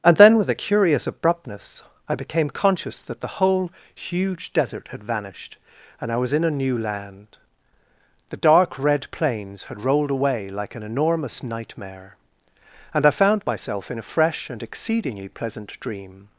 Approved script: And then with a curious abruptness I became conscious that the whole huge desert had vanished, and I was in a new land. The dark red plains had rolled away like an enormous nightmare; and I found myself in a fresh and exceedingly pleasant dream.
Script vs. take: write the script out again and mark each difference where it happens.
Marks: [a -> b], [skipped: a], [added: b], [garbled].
And then with a curious abruptness I became conscious that the whole huge desert had vanished, and I was in a new land. The dark red plains had rolled away like an enormous nightmare; and I found myself in a fresh and exceedingly pleasant dream.